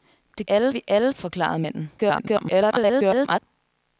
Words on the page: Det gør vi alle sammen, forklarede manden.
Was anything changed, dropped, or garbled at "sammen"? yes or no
yes